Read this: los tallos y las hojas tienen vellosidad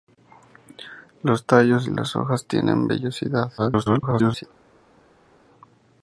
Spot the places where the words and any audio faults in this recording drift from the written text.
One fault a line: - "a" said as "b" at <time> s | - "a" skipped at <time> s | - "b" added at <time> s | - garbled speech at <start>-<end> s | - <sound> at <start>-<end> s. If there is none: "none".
- garbled speech at 3.6-4.4 s